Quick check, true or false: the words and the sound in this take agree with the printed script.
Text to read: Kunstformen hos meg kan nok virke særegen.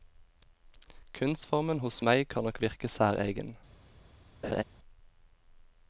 false